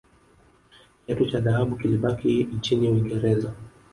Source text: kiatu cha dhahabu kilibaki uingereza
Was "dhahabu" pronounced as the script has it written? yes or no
yes